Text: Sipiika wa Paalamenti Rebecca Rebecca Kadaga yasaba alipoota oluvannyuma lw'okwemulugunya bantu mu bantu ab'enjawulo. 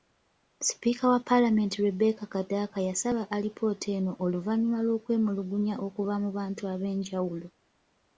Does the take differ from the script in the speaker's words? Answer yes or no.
yes